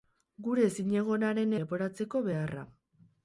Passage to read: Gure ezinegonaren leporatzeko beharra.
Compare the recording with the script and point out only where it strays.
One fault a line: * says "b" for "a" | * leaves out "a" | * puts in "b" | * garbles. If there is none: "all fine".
all fine